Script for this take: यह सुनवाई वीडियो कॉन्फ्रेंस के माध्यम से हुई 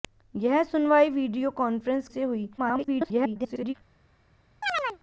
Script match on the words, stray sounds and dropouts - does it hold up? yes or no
no